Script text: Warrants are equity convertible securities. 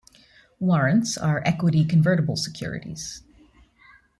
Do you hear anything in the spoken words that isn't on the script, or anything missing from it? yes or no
no